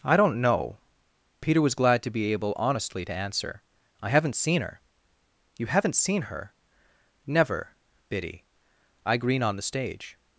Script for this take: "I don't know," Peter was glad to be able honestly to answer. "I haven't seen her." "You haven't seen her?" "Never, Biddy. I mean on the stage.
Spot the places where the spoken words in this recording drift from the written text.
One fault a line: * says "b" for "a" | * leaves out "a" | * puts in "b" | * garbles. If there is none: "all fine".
* says "green" for "mean"